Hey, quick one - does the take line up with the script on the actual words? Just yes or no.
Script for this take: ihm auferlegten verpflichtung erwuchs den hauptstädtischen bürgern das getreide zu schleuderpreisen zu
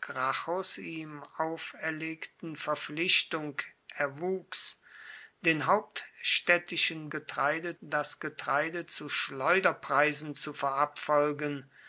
no